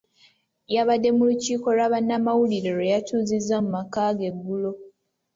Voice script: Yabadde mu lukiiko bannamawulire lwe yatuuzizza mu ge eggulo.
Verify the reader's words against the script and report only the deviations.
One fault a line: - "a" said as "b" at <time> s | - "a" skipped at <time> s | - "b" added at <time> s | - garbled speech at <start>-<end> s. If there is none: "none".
- "lwa" added at 1.8 s
- "maka" added at 3.8 s